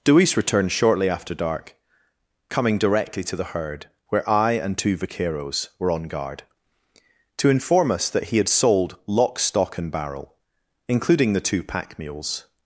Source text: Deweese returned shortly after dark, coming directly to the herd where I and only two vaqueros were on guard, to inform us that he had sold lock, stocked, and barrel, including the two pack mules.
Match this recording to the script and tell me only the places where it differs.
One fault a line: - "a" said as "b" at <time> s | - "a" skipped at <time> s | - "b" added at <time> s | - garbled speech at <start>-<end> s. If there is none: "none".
- "only" skipped at 4.8 s
- "stocked" said as "stock" at 9.4 s